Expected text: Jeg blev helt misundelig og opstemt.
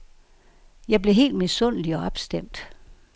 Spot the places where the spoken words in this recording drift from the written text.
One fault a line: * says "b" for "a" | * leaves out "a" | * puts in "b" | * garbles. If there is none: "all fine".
all fine